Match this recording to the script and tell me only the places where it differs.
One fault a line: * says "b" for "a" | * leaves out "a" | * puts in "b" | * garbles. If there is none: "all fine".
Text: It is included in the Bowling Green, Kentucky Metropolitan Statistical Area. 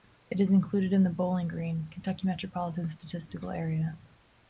all fine